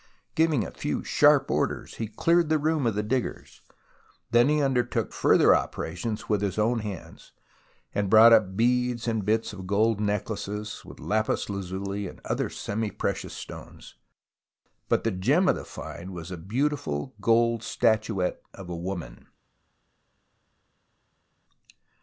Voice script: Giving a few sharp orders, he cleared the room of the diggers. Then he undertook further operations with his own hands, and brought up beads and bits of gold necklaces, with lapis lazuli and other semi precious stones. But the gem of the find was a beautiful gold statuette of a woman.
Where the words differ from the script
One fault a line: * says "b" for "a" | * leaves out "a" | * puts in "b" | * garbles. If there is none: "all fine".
all fine